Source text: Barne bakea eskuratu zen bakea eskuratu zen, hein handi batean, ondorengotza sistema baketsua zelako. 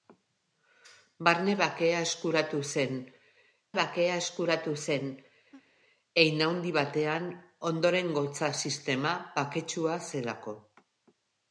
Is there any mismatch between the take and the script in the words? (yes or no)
no